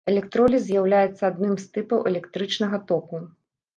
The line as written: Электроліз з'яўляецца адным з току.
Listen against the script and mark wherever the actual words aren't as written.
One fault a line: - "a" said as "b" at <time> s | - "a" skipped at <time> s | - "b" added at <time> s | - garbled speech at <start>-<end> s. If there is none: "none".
- "тыпаў электрычнага" added at 1.8 s